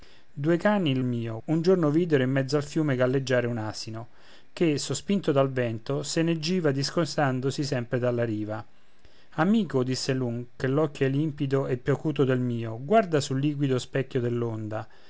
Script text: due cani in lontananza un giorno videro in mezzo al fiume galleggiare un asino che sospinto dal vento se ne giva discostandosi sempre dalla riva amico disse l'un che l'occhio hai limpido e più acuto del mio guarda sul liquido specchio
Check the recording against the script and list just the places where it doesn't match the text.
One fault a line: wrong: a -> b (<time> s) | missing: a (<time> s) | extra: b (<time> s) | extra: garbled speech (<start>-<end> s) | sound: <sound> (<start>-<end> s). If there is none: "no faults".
wrong: lontananza -> mio (1.0 s)